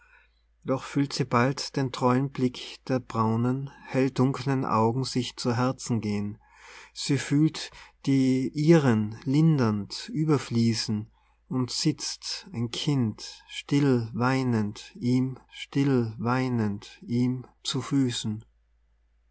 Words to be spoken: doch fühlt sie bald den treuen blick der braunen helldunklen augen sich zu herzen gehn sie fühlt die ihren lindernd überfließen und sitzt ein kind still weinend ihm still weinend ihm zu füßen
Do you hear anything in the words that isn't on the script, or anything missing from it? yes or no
no